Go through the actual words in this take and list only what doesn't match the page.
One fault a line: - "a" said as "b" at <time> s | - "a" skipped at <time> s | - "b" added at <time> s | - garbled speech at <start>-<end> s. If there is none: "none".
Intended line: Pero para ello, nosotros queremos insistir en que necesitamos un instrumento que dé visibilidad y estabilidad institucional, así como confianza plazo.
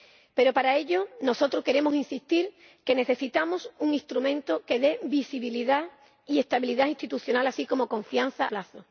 none